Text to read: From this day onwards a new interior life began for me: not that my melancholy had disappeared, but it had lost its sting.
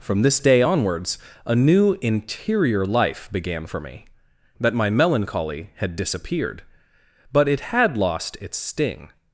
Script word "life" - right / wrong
right